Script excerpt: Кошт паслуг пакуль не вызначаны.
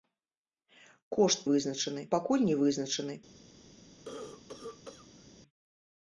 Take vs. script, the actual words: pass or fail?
fail